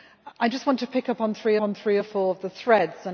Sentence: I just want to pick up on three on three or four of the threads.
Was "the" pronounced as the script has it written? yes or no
yes